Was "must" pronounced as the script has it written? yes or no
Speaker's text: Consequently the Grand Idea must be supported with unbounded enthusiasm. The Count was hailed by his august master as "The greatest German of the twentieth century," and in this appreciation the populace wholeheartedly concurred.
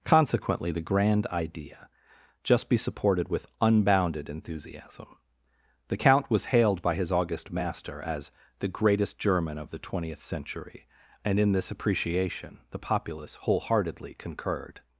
no